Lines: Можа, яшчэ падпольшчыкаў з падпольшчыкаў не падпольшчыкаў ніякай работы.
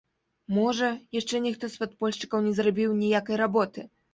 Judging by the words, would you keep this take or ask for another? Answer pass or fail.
fail